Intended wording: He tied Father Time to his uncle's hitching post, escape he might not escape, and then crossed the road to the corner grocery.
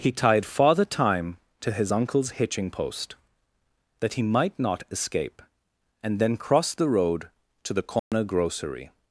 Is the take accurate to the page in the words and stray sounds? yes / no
no